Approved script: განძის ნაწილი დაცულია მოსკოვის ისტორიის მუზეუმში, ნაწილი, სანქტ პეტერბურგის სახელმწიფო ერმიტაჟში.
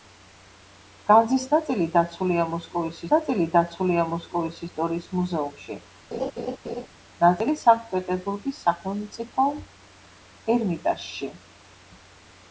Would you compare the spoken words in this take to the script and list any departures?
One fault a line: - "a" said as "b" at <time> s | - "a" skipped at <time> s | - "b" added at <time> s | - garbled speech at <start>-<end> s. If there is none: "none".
- "ნაწილი დაცულია მოსკოვის" added at 3.1 s